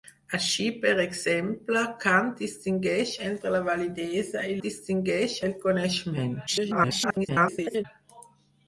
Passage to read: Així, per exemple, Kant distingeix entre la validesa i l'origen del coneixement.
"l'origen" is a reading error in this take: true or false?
true